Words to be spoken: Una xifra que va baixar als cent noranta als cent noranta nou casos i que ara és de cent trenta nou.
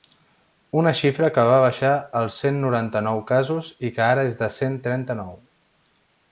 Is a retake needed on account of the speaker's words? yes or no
yes